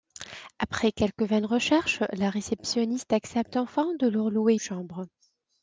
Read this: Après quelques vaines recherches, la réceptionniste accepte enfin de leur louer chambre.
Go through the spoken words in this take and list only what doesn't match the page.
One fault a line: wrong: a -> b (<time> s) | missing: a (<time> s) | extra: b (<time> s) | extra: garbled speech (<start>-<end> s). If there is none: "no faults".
no faults